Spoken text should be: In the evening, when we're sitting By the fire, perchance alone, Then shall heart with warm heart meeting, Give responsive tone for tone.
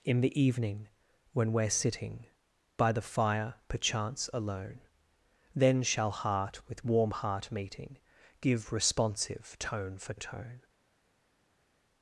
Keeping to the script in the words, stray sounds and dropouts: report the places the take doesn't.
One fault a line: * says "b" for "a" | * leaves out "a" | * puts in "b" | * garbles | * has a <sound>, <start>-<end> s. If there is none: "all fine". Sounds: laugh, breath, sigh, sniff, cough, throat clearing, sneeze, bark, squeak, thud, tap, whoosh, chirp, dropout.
all fine